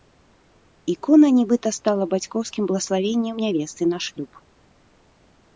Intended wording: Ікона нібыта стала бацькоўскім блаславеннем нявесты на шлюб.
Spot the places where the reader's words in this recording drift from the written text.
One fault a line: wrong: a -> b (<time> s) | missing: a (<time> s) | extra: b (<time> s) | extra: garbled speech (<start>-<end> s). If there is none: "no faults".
no faults